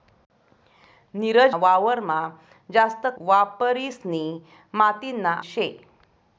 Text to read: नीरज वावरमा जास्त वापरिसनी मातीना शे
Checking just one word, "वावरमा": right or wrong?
right